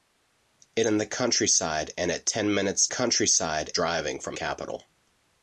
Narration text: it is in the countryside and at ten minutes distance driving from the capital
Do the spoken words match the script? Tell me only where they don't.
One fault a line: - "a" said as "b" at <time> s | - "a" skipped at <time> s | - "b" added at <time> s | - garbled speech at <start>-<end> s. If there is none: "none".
- "is" skipped at 0.9 s
- "distance" said as "countryside" at 2.9 s
- "the" skipped at 4.4 s